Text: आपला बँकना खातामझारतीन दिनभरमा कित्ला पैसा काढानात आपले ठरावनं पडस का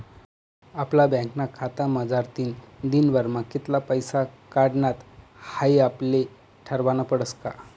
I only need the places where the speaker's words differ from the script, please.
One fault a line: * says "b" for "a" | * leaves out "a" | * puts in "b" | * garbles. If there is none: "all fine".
* puts in "हाई"